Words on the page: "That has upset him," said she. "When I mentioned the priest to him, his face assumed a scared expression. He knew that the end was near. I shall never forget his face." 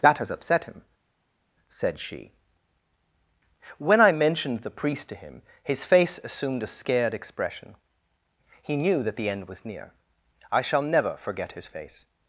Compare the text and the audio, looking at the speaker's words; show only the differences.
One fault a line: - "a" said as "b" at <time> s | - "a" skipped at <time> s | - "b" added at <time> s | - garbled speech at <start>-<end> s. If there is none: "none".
none